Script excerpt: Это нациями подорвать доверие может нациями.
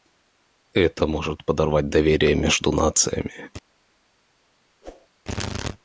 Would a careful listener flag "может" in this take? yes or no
yes